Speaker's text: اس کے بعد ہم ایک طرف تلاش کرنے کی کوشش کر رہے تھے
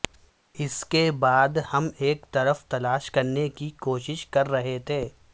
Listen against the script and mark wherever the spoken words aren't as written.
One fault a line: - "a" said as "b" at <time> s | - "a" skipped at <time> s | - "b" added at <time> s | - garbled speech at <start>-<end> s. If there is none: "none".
none